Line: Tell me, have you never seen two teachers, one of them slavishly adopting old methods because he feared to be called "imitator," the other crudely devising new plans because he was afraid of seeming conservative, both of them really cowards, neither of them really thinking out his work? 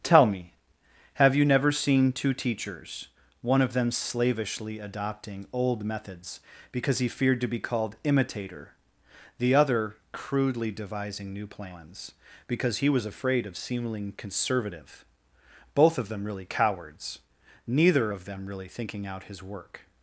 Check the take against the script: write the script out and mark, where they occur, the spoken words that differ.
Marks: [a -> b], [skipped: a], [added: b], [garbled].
Tell me, have you never seen two teachers, one of them slavishly adopting old methods because he feared to be called "imitator," the other crudely devising new plans because he was afraid of seeming conservative, both of them really cowards, neither of them really thinking out his work?